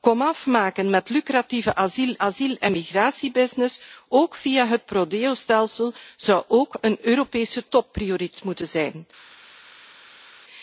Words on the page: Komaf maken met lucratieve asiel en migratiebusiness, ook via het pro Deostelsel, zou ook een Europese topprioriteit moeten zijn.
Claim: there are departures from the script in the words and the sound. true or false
true